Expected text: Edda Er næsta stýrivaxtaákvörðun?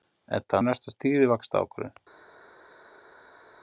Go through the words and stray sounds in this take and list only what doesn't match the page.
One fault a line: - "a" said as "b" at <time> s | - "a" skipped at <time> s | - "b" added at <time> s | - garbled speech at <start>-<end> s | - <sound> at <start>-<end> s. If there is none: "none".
none